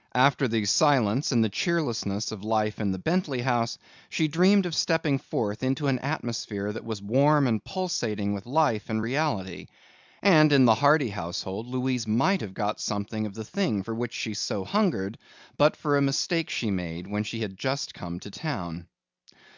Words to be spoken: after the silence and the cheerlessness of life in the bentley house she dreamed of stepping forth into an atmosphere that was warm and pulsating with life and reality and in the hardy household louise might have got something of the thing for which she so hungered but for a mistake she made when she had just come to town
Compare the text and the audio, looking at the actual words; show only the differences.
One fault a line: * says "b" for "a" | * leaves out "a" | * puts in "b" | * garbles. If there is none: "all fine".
all fine